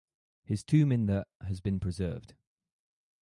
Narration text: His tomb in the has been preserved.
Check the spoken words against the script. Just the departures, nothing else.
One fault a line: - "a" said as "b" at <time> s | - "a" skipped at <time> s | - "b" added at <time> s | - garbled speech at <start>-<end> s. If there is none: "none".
none